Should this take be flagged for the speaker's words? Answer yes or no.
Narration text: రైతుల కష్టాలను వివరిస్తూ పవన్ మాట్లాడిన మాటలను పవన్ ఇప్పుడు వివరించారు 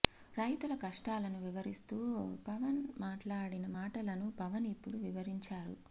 no